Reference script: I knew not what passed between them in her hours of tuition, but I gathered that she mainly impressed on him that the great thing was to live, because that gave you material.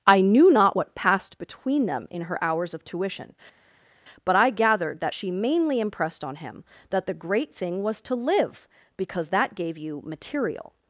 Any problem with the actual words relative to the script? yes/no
no